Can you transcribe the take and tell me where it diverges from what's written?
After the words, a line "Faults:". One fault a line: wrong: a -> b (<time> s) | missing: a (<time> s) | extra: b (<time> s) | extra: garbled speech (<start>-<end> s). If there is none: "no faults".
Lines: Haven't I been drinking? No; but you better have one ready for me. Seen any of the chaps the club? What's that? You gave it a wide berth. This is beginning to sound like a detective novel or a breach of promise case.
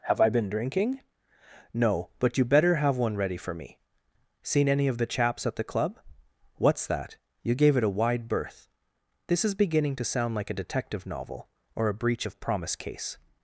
Have I been drinking? No; but you better have one ready for me. Seen any of the chaps at the club? What's that? You gave it a wide berth. This is beginning to sound like a detective novel or a breach of promise case.
Faults:
wrong: Haven't -> Have (0.1 s)
extra: at (5.5 s)